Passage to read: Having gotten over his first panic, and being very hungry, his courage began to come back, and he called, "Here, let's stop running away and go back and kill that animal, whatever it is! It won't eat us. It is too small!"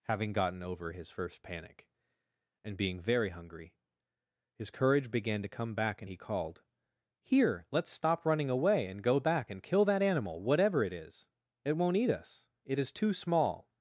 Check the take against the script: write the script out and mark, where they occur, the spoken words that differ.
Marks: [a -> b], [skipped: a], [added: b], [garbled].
Having gotten over his first panic, and being very hungry, his courage began to come back, and he called, "Here, let's stop running away and go back and kill that animal, whatever it is! It won't eat us. It is too small!"